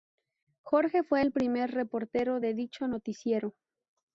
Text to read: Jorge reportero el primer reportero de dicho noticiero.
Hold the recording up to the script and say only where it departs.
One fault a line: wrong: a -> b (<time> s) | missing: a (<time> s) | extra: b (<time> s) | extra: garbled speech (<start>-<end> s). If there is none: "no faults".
wrong: reportero -> fue (1.0 s)